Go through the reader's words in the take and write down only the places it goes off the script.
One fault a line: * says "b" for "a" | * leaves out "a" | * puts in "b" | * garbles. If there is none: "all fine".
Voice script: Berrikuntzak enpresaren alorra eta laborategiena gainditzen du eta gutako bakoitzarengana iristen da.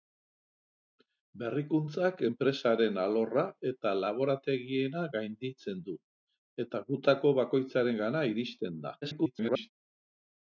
* garbles